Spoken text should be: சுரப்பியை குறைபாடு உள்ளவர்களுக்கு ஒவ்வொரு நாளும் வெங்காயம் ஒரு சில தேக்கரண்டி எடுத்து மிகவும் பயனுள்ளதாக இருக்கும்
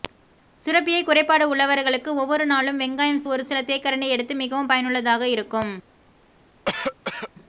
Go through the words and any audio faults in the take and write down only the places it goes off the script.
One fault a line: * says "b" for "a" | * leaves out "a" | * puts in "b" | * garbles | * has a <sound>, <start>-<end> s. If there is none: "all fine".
* has a cough, 6.7-7.3 s